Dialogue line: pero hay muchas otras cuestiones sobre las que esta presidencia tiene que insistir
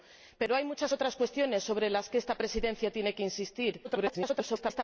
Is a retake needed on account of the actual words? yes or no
yes